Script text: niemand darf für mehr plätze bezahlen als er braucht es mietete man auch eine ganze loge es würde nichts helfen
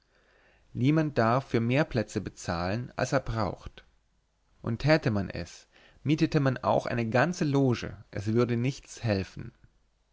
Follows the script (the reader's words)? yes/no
no